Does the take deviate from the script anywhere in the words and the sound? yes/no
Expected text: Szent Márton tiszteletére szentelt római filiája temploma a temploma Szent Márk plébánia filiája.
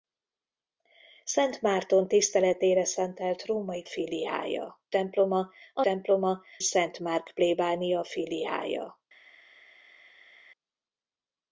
no